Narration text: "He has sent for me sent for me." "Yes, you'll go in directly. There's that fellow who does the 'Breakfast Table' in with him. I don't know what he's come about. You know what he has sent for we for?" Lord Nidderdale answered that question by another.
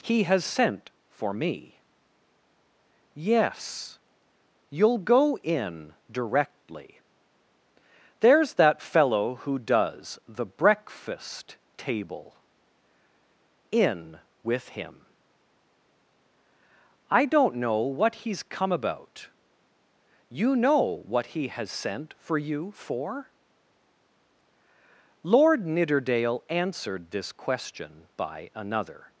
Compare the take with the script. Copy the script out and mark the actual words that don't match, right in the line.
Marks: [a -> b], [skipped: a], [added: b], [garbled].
"He has sent for me [skipped: sent for me."] "Yes, you'll go in directly. There's that fellow who does the 'Breakfast Table' in with him. I don't know what he's come about. You know what he has sent for [we -> you] for?" Lord Nidderdale answered [that -> this] question by another.